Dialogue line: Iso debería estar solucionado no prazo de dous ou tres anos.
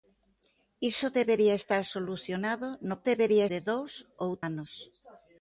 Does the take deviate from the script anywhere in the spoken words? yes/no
yes